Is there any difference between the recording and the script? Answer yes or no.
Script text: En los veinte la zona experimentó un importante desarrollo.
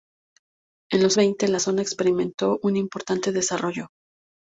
no